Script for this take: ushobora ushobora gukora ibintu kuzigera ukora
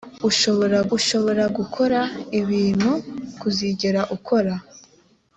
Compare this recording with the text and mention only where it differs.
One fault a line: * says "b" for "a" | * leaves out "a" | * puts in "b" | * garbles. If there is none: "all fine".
all fine